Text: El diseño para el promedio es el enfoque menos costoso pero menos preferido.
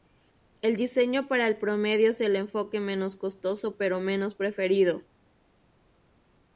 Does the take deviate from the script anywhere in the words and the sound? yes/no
no